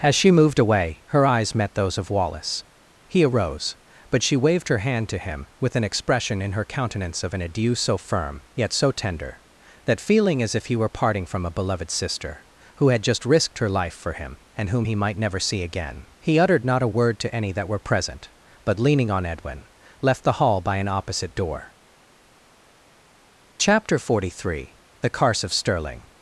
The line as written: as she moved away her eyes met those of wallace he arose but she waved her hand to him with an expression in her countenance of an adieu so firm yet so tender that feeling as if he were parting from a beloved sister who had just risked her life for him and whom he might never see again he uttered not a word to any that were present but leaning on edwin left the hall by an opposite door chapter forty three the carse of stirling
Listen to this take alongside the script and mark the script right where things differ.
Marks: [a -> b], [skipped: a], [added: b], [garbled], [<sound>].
as she moved away her eyes met those of wallace he arose but she waved her hand to him with an expression in her countenance of an adieu so firm yet so tender that feeling as if he were parting from a beloved sister who had just risked her life for him and whom he might never see again he uttered not a word to any that were present but leaning on edwin left the hall by an opposite door chapter forty three the carse of stirling